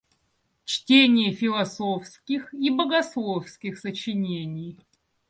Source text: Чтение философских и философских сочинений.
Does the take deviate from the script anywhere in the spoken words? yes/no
yes